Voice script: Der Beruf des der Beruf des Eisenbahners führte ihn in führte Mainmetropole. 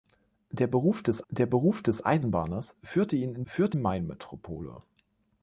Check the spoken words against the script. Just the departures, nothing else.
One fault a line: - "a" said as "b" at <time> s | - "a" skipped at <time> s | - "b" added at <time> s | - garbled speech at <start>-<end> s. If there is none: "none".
none